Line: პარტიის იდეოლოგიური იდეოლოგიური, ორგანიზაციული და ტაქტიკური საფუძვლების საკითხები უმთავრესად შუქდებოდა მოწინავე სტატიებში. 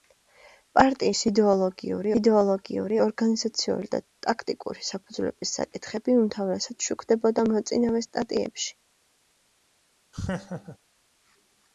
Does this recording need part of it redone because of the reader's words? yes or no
no